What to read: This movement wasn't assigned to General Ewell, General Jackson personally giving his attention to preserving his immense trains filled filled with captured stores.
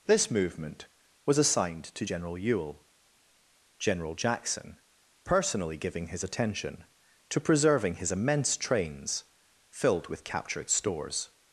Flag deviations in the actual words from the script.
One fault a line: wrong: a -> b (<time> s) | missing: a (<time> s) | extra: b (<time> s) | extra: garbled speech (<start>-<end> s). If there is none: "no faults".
wrong: wasn't -> was (1.2 s)
missing: filled (10.1 s)